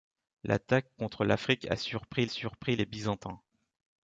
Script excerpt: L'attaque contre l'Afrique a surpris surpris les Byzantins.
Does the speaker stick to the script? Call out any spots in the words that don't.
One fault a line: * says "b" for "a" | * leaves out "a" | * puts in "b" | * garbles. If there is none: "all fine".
all fine